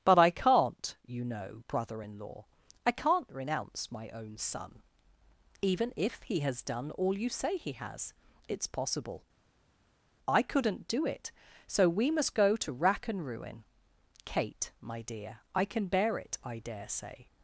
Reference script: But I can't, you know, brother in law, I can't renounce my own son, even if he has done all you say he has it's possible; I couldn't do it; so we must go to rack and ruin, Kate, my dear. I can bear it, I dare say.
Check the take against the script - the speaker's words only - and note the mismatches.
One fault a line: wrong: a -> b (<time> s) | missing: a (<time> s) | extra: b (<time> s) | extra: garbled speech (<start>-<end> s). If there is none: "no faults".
no faults